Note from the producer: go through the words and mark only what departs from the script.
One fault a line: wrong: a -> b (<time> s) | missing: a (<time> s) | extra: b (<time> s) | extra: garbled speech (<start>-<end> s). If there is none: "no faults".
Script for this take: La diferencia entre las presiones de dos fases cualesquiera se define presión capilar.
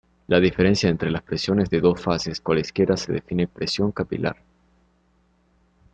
no faults